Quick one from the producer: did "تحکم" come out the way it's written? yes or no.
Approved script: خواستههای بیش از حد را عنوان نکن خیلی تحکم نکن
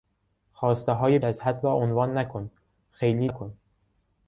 no